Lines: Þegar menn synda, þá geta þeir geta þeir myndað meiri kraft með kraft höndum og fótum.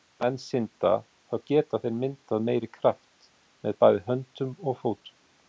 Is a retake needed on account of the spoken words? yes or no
yes